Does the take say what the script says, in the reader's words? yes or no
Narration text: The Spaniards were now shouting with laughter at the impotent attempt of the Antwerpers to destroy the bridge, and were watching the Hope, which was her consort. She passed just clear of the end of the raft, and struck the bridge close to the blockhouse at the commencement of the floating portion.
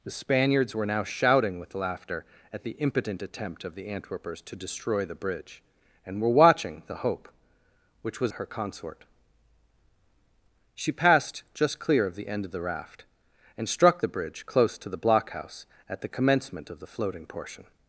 yes